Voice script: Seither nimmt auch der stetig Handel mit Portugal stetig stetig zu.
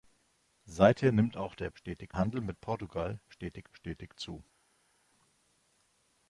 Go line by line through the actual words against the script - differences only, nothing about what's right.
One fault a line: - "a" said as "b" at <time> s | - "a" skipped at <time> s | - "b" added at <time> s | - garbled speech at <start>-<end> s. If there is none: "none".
none